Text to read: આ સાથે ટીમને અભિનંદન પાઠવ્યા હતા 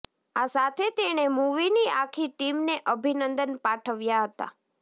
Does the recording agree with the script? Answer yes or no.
no